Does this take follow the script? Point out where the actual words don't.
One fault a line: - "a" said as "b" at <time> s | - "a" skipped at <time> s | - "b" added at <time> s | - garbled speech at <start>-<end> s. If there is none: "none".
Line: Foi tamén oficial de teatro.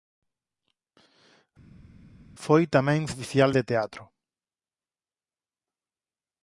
none